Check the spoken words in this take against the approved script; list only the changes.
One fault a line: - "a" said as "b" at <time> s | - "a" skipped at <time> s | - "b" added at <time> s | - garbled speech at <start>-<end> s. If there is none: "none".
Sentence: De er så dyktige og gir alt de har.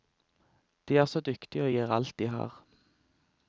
none